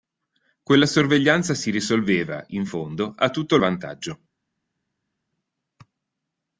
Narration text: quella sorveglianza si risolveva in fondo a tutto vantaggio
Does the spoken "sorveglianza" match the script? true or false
true